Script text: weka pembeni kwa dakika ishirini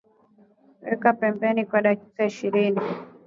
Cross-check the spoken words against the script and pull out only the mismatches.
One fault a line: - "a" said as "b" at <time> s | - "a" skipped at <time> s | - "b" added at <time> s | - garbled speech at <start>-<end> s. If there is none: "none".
none